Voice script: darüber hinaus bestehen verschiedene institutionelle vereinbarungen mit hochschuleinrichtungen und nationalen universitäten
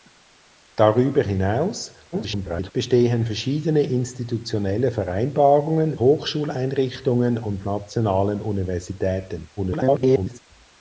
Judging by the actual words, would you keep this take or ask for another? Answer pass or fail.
fail